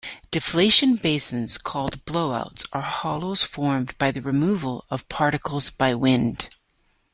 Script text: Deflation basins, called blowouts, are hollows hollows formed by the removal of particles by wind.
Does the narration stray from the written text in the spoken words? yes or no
yes